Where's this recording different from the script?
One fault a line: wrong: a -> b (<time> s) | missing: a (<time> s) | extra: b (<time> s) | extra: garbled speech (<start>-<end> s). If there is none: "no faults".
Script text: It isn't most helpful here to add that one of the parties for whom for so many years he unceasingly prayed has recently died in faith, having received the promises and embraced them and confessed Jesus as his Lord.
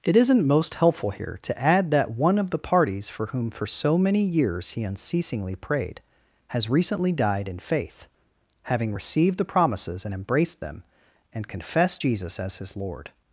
no faults